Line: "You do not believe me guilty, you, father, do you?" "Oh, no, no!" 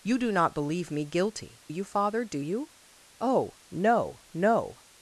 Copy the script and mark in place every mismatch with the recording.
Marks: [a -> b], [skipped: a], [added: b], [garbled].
"You do not believe me guilty, you, father, do you?" "Oh, no, no!"